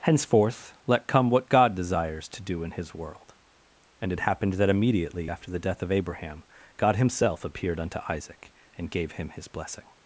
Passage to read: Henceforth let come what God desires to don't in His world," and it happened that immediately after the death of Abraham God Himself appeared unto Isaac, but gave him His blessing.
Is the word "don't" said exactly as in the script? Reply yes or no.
no